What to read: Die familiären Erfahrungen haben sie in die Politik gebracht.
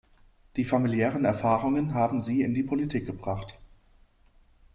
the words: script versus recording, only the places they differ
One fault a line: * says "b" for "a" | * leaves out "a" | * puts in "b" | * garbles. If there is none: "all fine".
all fine